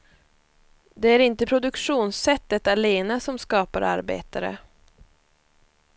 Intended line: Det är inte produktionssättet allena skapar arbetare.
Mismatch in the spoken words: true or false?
true